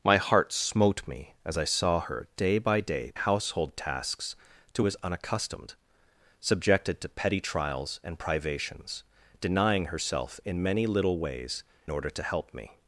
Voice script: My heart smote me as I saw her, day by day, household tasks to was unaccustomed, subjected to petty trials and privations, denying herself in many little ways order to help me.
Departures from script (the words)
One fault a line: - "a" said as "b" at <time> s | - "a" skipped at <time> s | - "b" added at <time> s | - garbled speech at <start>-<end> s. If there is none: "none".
none